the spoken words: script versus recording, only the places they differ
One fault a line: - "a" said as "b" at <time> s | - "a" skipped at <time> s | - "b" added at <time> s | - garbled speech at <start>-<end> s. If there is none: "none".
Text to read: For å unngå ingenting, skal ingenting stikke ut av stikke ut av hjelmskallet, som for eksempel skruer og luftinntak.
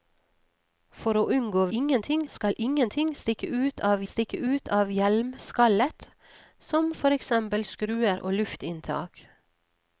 none